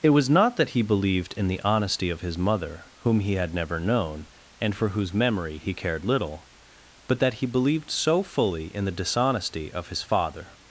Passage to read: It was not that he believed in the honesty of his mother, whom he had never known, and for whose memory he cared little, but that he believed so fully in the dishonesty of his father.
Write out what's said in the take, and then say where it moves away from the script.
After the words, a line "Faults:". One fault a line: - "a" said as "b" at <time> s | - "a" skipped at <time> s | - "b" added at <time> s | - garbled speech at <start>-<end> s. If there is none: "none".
It was not that he believed in the honesty of his mother, whom he had never known, and for whose memory he cared little, but that he believed so fully in the dishonesty of his father.
Faults:
none